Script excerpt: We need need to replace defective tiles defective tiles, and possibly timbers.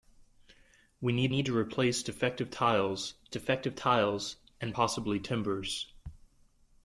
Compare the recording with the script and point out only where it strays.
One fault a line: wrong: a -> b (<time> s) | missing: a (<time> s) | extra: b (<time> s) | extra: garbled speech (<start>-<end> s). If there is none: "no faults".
no faults